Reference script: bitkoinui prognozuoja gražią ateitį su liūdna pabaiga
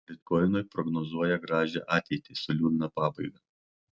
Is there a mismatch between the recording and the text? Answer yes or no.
no